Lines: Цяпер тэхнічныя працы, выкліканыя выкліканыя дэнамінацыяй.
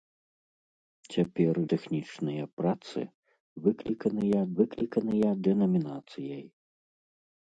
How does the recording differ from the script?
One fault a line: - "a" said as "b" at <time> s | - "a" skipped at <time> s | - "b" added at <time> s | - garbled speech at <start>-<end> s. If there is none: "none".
none